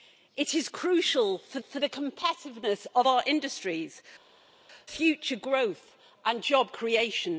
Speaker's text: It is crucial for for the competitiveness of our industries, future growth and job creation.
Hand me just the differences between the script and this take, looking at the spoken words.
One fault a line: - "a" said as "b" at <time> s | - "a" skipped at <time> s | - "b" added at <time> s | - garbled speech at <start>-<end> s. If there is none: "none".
none